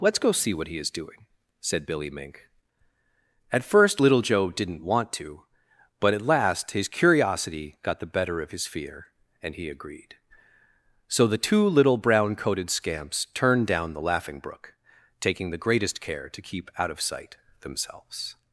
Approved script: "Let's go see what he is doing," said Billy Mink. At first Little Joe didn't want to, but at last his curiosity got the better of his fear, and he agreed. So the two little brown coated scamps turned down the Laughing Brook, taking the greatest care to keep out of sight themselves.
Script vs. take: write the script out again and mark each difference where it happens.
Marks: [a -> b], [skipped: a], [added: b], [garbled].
"Let's go see what he is doing," said Billy Mink. At first Little Joe didn't want to, but at last his curiosity got the better of his fear, and he agreed. So the two little brown coated scamps turned down the Laughing Brook, taking the greatest care to keep out of sight themselves.